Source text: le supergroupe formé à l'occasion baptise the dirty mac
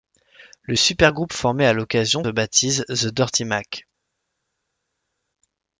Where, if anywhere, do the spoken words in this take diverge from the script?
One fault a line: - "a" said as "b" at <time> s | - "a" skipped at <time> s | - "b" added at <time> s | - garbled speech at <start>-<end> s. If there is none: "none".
none